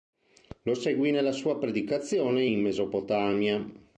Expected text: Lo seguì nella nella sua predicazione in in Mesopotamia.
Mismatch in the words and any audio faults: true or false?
true